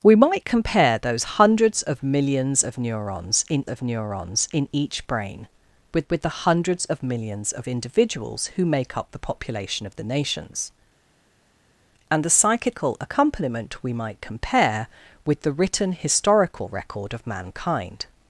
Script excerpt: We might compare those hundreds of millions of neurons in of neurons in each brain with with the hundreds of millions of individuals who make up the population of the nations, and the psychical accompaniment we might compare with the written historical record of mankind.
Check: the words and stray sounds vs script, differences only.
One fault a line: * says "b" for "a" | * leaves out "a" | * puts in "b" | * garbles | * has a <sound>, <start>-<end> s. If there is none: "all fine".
all fine